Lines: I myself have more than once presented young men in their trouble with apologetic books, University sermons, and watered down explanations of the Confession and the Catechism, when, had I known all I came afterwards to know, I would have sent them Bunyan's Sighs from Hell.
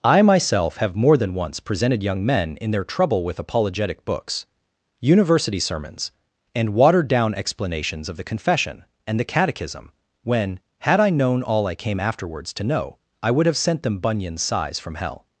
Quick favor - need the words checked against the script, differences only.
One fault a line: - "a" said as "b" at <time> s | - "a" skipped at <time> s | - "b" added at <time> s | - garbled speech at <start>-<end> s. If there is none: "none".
none